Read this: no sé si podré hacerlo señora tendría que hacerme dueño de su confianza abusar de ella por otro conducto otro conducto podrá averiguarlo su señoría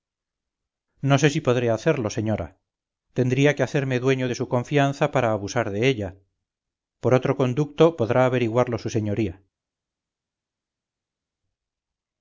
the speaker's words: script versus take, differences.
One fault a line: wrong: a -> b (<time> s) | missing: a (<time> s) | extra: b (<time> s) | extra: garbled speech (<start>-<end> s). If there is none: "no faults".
extra: para (5.1 s)
missing: otro conducto (8.0 s)